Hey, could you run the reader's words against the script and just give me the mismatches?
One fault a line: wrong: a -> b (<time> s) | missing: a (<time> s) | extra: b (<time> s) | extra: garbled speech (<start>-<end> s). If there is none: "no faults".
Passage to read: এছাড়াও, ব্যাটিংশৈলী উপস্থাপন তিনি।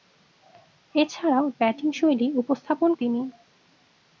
no faults